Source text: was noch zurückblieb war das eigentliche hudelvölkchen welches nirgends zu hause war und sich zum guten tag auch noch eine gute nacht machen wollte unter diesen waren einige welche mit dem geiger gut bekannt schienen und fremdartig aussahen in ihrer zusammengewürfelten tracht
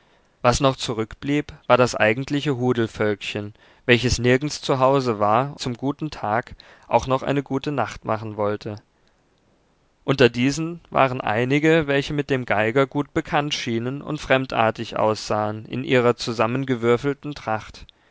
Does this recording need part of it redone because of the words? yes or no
yes